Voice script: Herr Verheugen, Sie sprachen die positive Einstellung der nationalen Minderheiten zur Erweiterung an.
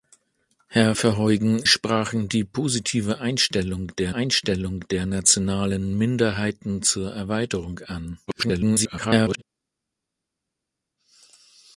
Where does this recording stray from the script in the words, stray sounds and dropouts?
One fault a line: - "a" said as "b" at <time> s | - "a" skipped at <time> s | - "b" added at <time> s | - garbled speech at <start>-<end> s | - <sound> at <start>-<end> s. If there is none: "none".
- "Sie" skipped at 1.6 s
- "Einstellung der" added at 4.1 s
- garbled speech at 8.3-9.4 s